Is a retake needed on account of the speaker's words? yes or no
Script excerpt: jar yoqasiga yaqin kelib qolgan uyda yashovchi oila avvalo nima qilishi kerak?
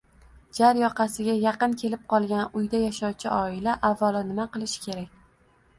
no